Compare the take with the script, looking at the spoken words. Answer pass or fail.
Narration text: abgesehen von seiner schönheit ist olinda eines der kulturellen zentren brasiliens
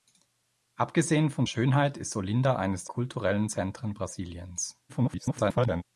fail